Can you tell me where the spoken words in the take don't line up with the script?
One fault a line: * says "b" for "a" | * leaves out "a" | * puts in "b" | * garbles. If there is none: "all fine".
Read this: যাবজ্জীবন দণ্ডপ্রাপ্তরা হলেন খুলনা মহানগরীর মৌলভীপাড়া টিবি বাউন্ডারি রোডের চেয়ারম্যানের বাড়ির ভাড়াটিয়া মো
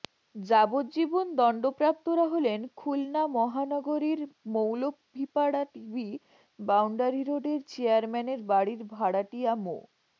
all fine